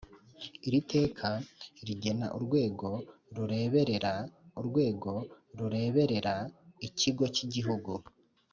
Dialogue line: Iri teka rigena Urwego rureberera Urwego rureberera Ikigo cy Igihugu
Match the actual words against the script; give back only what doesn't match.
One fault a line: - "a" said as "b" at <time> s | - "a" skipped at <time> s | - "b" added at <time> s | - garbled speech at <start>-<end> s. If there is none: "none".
none